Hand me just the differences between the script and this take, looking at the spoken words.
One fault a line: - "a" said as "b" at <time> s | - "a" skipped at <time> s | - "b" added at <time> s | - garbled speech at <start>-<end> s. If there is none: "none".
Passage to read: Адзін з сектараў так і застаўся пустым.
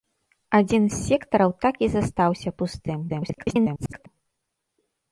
- garbled speech at 3.1-4.1 s